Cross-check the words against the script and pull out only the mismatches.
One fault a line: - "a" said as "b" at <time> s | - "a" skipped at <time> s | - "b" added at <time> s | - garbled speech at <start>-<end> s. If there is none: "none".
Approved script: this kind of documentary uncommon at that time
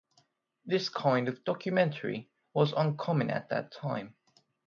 - "was" added at 2.5 s